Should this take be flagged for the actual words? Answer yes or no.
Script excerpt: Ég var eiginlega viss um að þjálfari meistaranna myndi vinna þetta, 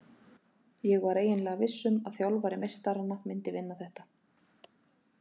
no